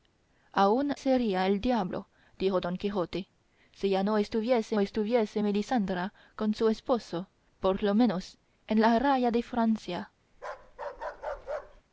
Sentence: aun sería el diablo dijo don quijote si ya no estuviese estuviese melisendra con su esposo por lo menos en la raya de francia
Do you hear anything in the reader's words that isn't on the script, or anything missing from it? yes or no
no